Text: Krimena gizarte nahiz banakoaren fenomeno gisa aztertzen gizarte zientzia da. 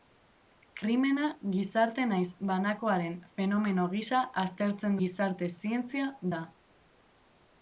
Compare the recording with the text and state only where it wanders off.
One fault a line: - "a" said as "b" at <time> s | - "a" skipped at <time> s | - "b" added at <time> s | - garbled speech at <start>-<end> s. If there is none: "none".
none